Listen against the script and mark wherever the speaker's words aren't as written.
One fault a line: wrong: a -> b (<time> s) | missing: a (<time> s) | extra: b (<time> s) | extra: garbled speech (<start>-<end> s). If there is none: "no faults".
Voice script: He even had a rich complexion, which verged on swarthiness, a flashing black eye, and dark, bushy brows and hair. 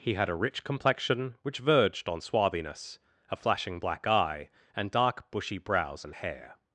missing: even (0.1 s)